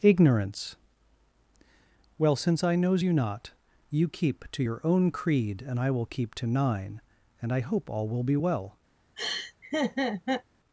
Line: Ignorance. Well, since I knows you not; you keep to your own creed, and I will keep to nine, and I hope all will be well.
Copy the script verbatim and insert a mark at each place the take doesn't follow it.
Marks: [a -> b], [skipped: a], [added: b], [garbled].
Ignorance. Well, since I knows you not; you keep to your own creed, and I will keep to nine, and I hope all will be well.